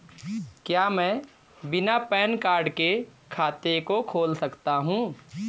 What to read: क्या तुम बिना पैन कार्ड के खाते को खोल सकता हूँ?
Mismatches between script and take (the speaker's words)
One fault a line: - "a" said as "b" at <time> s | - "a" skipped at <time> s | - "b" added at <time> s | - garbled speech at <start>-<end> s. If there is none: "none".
- "तुम" said as "मैं" at 0.9 s